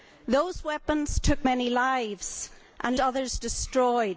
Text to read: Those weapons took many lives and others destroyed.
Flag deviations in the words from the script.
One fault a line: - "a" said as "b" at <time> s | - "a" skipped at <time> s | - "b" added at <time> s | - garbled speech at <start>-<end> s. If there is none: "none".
none